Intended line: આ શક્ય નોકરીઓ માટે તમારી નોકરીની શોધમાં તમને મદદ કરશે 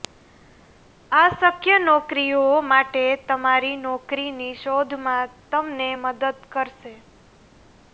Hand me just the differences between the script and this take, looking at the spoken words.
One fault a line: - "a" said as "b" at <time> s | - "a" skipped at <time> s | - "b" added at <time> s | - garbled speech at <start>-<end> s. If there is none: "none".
none